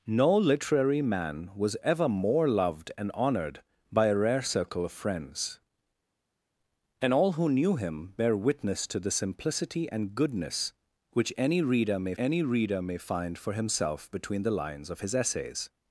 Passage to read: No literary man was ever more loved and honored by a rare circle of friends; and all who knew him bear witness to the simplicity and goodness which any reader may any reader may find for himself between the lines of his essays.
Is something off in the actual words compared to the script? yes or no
no